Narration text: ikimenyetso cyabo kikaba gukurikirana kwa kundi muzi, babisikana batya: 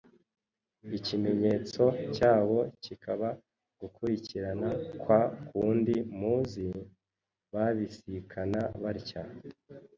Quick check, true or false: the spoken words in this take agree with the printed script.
true